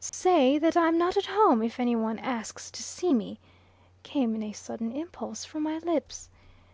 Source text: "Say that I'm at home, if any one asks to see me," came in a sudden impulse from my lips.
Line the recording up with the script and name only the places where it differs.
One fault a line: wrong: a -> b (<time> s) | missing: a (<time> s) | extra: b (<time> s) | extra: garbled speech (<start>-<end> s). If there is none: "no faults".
extra: not (1.0 s)